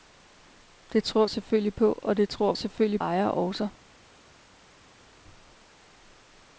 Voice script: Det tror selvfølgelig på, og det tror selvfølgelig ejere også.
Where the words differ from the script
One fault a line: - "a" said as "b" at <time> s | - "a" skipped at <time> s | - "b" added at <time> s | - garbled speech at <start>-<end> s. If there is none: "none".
none